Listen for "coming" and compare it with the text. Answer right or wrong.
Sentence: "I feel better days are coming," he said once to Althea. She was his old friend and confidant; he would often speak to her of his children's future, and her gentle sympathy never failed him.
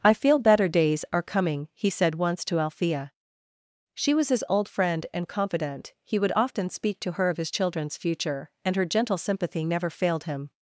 right